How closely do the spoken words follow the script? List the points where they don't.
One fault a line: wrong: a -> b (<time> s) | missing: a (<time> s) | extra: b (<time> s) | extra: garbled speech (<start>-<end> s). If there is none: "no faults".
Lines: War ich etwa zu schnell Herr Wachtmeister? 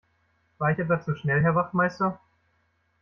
no faults